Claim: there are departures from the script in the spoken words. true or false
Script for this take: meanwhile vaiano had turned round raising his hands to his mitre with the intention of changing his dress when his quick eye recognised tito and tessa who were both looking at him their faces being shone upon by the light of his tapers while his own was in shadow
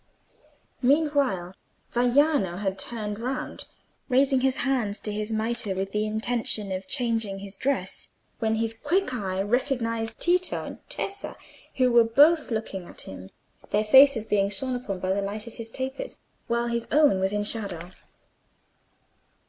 false